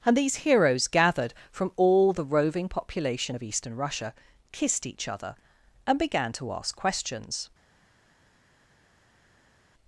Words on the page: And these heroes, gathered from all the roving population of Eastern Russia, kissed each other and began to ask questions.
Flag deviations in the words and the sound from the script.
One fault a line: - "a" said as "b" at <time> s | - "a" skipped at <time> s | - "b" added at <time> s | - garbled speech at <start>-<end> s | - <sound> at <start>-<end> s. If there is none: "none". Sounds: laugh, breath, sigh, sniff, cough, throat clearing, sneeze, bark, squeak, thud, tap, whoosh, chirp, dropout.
none